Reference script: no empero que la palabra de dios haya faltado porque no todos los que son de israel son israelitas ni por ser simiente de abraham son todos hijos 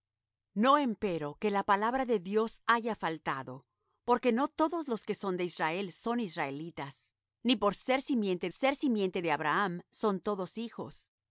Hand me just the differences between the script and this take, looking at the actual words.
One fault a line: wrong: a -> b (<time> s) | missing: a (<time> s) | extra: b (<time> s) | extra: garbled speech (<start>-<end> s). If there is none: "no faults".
extra: ser simiente (8.5 s)